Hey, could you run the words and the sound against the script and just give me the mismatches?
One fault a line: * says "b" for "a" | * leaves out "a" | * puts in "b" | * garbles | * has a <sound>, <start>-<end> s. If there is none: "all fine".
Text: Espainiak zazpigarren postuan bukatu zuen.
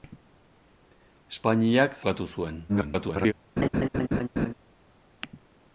* leaves out "zazpigarren postuan"
* garbles
* has a laugh, 3.6-4.5 s